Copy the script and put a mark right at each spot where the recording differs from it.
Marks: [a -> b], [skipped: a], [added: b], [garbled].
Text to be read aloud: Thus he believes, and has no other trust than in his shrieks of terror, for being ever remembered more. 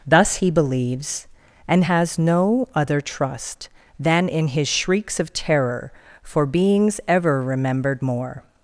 Thus he believes, and has no other trust than in his shrieks of terror, for [being -> beings] ever remembered more.